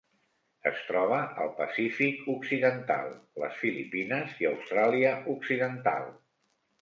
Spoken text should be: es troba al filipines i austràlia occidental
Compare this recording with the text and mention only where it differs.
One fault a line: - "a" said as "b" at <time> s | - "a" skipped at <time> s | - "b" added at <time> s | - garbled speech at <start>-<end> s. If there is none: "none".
- "pacífic occidental les" added at 1.6 s